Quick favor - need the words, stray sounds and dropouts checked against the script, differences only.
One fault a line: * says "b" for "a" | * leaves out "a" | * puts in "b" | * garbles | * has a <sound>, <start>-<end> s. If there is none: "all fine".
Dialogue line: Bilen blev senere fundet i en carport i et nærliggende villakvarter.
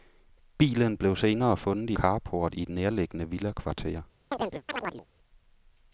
* leaves out "en"
* has a chirp, 4.3-5.1 s